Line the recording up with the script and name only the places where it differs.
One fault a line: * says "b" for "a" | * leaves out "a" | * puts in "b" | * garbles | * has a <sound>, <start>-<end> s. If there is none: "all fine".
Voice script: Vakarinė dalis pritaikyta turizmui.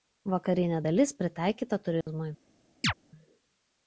* has a dropout, 2.0-2.1 s
* has a chirp, 2.8-2.9 s